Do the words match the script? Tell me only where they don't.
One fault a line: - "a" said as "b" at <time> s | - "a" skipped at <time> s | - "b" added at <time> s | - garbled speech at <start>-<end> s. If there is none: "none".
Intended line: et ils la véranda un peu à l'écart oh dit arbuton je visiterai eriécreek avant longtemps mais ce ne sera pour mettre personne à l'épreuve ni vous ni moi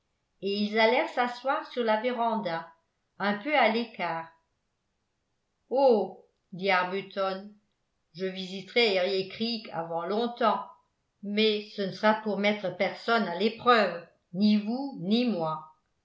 - "allèrent s'asseoir sur" added at 0.8 s